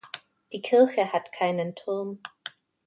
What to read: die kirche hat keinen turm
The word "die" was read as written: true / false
true